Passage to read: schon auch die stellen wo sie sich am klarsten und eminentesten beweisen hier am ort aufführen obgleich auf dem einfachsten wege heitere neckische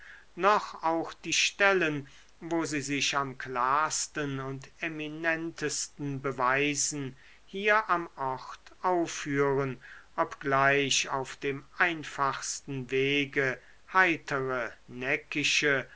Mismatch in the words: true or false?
true